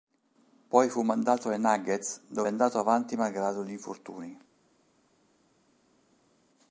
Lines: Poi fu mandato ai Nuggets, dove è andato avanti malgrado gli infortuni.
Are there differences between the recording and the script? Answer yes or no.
no